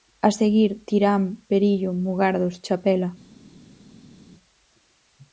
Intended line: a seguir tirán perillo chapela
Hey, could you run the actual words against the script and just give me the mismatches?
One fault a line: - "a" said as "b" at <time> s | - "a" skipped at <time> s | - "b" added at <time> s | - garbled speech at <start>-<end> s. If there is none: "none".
- "mugardos" added at 2.0 s